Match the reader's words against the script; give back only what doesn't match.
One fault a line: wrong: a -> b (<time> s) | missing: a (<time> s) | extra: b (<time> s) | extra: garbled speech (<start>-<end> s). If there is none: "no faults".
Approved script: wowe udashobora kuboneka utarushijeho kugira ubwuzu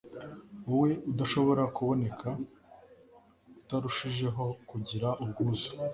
no faults